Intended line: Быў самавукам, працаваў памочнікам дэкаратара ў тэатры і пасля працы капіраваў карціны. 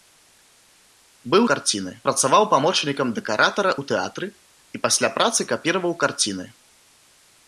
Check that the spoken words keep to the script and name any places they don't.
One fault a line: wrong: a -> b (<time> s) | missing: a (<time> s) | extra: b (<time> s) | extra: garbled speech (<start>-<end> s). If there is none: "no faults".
wrong: самавукам -> карціны (1.5 s)